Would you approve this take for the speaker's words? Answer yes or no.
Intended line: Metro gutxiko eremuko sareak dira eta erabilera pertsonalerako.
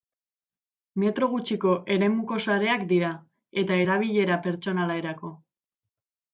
yes